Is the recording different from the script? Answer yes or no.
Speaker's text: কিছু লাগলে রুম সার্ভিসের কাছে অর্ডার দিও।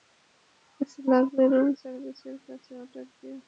no